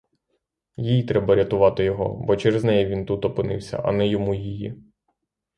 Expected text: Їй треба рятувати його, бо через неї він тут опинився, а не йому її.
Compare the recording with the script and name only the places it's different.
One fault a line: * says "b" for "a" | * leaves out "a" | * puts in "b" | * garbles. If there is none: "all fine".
all fine